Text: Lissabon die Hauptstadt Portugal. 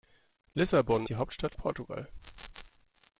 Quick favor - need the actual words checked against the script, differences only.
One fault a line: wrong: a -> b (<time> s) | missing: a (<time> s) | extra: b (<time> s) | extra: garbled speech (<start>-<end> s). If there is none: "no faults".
no faults